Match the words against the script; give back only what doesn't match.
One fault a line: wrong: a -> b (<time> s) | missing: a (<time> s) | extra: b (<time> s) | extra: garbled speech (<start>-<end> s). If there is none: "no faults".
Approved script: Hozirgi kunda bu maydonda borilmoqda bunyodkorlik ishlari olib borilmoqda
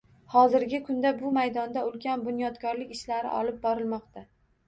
wrong: borilmoqda -> ulkan (1.9 s)